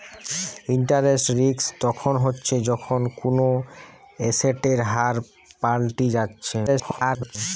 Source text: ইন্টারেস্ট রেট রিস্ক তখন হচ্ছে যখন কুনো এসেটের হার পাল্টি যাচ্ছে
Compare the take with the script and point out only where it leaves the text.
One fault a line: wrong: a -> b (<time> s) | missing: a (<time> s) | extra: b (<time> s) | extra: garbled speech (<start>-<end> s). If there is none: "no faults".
missing: রেট (1.3 s)
extra: garbled speech (6.7-7.4 s)